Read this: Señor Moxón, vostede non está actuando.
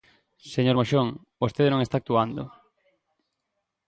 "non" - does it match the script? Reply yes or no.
yes